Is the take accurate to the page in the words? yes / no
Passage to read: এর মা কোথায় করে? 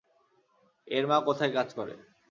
no